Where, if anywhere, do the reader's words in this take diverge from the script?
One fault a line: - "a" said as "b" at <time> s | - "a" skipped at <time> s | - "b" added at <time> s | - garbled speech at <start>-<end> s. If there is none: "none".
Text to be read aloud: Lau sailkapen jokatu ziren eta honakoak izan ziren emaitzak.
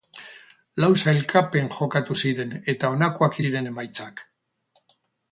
- "izan" skipped at 3.4 s